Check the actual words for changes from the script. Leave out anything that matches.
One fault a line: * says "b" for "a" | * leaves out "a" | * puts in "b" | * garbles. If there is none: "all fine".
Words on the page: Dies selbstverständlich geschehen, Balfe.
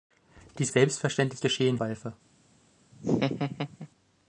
all fine